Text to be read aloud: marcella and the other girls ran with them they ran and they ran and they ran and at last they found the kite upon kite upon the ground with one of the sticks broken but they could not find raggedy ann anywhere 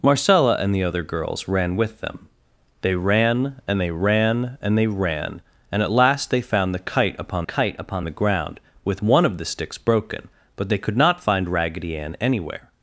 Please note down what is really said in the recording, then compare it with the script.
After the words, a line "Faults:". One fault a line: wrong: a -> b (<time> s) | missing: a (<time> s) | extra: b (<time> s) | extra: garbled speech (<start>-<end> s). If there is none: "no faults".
marcella and the other girls ran with them they ran and they ran and they ran and at last they found the kite upon kite upon the ground with one of the sticks broken but they could not find raggedy ann anywhere
Faults:
no faults